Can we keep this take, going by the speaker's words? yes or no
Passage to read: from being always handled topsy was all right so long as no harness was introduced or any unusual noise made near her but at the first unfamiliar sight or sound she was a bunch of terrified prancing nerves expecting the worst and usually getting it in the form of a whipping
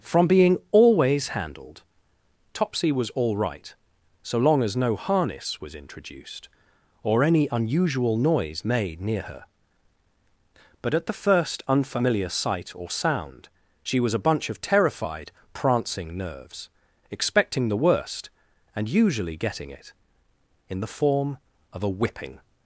yes